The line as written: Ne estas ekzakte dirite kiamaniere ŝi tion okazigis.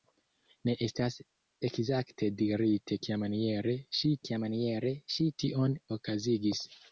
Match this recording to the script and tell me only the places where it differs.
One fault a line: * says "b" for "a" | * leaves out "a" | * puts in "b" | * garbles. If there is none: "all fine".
* puts in "kiamaniere ŝi"